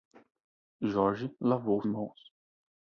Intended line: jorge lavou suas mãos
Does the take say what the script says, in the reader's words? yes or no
no